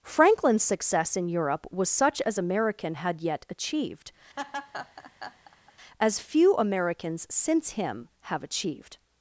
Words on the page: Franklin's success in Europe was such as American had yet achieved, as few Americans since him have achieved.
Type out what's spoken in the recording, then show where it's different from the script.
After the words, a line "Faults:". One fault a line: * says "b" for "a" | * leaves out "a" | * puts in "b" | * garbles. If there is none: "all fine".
Franklin's success in Europe was such as American had yet achieved, as few Americans since him have achieved.
Faults:
all fine